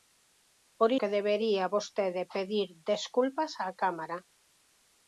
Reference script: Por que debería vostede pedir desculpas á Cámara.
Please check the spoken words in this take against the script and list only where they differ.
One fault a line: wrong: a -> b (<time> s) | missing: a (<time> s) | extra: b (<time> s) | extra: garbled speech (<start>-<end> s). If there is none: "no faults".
no faults